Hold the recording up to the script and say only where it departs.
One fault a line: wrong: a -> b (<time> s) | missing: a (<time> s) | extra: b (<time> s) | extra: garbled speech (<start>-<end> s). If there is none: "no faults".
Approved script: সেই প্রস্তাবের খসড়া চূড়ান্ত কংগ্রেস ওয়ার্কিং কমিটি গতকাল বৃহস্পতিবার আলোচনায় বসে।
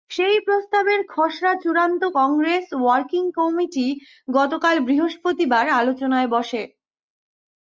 no faults